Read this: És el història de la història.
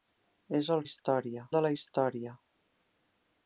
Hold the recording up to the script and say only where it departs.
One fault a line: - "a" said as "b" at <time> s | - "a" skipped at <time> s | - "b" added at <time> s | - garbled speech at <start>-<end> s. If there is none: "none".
none